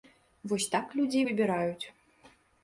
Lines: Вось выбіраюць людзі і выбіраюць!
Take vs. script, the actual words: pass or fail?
fail